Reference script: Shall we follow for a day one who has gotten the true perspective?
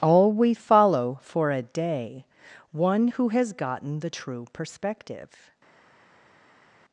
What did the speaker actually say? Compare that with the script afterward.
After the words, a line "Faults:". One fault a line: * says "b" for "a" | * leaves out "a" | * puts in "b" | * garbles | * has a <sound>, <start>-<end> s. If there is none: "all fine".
All we follow for a day one who has gotten the true perspective?
Faults:
* says "All" for "Shall"